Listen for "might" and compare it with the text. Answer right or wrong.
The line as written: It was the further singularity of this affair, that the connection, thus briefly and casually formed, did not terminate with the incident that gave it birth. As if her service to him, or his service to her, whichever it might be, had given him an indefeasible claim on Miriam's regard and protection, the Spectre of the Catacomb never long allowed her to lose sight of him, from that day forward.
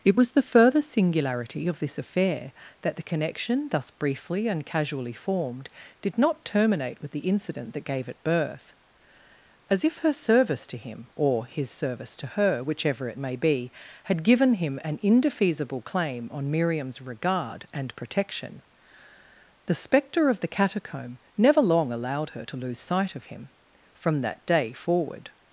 wrong